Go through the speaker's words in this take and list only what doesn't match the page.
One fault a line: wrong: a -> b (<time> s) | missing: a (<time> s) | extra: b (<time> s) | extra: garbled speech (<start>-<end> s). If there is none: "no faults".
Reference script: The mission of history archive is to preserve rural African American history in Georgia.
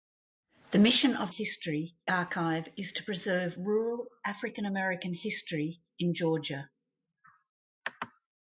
no faults